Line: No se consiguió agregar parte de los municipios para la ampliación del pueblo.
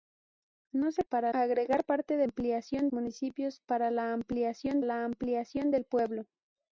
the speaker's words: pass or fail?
fail